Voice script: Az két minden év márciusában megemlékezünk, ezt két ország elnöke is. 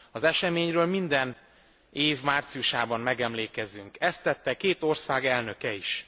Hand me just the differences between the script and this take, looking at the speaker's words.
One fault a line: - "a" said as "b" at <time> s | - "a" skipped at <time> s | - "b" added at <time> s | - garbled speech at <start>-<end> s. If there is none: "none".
- "két" said as "eseményről" at 0.2 s
- "tette" added at 4.2 s